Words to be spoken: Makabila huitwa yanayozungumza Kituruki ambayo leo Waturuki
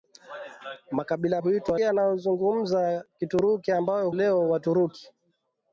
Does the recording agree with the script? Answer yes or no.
yes